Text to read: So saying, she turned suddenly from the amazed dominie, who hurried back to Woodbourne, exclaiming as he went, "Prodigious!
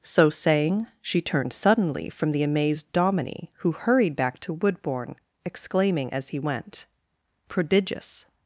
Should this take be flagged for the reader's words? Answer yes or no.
no